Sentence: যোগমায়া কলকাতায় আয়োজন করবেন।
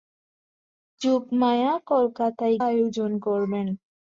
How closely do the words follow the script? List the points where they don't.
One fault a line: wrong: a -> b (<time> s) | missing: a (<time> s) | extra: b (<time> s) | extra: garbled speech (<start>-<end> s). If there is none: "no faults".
no faults